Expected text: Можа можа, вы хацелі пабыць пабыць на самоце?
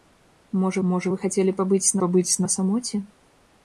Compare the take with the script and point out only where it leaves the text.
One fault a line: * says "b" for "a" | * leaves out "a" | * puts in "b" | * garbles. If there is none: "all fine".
all fine